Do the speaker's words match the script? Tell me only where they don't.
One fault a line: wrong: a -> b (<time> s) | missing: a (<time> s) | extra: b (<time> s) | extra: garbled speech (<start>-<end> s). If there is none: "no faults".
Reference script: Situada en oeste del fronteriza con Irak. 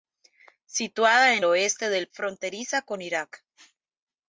no faults